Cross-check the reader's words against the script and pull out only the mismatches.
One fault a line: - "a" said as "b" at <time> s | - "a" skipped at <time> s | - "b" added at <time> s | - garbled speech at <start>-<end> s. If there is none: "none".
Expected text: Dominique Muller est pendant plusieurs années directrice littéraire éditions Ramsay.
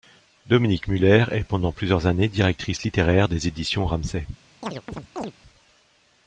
- "des" added at 3.3 s